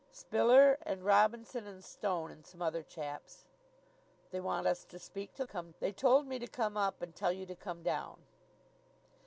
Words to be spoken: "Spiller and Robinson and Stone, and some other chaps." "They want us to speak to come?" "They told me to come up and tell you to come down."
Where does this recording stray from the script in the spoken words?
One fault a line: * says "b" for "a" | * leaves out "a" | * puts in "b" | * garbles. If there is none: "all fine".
all fine